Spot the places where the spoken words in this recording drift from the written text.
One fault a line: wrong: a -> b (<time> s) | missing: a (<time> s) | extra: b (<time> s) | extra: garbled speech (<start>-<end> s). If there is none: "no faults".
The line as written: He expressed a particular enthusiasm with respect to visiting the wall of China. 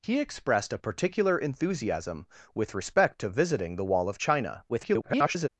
extra: garbled speech (4.7-5.5 s)